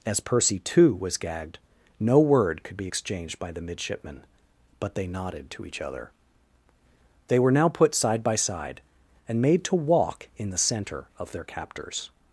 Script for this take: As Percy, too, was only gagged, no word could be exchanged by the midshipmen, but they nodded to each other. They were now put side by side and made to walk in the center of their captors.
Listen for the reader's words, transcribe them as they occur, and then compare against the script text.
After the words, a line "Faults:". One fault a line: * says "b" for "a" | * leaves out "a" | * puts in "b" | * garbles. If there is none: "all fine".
As Percy, too, was gagged, no word could be exchanged by the midshipmen, but they nodded to each other. They were now put side by side and made to walk in the center of their captors.
Faults:
* leaves out "only"